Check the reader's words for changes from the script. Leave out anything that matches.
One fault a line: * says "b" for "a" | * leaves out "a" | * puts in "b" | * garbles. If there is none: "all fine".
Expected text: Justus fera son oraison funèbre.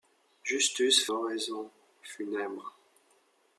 * leaves out "fera son"